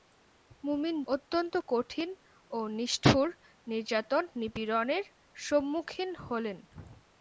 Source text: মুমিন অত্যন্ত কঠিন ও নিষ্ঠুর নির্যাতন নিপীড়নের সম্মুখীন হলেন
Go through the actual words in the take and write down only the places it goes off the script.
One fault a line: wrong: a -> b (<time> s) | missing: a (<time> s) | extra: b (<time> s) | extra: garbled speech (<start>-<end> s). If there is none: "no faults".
no faults